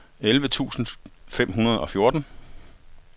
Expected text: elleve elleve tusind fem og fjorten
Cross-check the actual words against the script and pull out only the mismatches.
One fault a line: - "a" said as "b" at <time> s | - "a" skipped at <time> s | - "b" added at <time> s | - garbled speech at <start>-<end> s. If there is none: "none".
- "elleve" skipped at 0.5 s
- "hundrede" added at 1.5 s